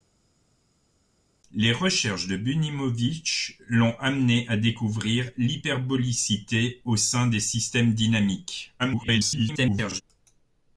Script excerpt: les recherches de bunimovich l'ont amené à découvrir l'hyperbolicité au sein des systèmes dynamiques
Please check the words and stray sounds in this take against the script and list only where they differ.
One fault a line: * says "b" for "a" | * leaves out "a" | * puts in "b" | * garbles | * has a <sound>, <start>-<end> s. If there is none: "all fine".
* garbles